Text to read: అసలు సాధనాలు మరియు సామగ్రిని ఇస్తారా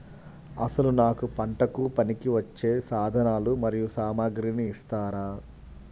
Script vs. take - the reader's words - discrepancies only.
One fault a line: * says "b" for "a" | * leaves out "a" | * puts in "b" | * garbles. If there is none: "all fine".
* puts in "నాకు పంటకు పనికివచ్చే"